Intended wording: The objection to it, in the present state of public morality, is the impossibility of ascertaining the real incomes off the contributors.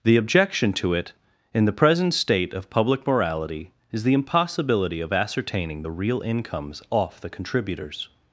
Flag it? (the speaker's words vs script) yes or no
no